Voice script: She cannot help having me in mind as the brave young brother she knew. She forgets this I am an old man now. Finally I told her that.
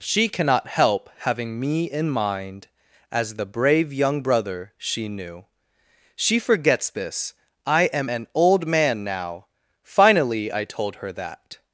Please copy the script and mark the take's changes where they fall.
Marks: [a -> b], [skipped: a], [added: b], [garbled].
She cannot help having me in mind as the brave young brother she knew. She forgets this I am an old man now. Finally I told her that.